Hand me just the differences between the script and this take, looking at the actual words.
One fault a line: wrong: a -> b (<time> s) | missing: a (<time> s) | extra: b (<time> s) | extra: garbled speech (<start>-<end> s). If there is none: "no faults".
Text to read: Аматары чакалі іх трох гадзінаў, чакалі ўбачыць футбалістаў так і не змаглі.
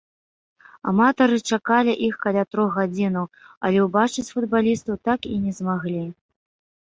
extra: каля (2.2 s)
wrong: чакалі -> але (3.7 s)